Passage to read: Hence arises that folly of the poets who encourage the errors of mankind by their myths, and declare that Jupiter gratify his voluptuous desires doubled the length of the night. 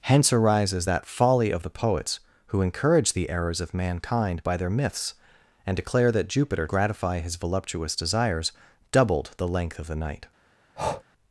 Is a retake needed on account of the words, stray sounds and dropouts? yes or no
yes